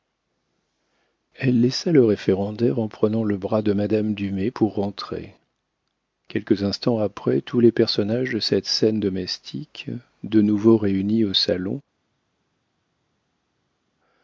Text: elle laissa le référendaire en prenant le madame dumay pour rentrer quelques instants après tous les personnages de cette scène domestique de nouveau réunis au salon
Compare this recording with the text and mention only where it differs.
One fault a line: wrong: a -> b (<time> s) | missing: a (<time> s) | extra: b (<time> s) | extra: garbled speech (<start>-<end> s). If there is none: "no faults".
extra: bras de (3.4 s)